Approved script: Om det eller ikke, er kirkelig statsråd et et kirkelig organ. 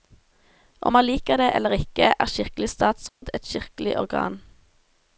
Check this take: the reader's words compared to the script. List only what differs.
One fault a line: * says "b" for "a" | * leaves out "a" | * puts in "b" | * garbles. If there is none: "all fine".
* puts in "man liker"
* leaves out "et"